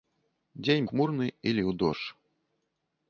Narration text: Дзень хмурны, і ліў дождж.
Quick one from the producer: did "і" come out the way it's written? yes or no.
yes